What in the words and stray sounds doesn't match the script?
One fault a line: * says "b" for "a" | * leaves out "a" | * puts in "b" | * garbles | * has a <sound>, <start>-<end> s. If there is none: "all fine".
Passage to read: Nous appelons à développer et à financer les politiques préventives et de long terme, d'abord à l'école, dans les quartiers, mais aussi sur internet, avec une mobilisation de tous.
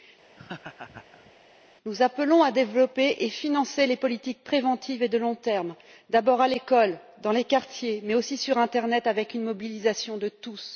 * has a laugh, 0.4-1.3 s